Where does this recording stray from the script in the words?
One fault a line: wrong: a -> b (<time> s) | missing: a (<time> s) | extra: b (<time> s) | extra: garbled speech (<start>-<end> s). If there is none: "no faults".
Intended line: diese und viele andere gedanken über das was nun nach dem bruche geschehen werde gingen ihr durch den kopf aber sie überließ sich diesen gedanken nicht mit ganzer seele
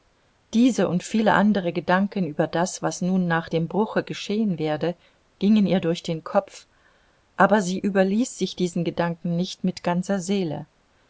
no faults